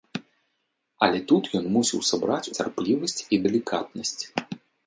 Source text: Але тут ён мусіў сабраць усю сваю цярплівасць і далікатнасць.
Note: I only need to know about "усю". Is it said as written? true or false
false